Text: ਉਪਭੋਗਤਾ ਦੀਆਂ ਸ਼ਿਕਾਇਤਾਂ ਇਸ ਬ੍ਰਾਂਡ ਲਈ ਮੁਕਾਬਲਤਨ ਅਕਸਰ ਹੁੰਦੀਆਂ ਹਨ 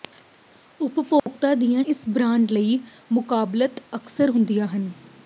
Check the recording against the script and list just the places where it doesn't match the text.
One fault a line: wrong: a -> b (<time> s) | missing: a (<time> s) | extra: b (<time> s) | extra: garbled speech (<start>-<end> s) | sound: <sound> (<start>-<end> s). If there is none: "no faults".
sound: dropout (1.2-1.3 s)
missing: ਸ਼ਿਕਾਇਤਾਂ (1.8 s)